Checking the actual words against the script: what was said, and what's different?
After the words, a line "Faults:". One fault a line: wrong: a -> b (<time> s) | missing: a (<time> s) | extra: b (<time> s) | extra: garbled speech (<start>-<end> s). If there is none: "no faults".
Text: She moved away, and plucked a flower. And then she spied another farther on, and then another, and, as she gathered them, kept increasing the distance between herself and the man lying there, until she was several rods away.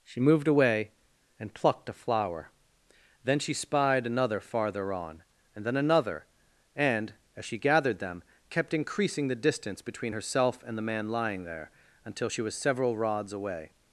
She moved away, and plucked a flower. then she spied another farther on, and then another, and, as she gathered them, kept increasing the distance between herself and the man lying there, until she was several rods away.
Faults:
missing: And (2.5 s)